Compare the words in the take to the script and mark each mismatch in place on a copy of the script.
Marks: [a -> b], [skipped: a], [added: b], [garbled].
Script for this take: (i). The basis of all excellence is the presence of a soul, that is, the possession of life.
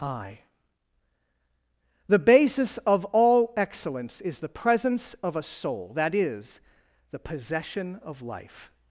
(i). The basis of all excellence is the presence of a soul, that is, the possession of life.